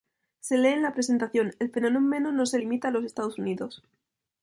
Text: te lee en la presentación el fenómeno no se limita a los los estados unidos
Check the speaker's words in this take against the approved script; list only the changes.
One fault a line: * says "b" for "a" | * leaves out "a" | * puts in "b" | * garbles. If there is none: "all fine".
* says "se" for "te"
* leaves out "los"